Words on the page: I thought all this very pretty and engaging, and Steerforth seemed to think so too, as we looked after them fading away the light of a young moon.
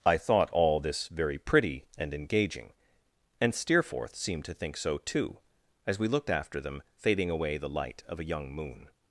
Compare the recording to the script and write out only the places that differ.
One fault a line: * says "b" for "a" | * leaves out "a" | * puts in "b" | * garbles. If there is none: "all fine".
all fine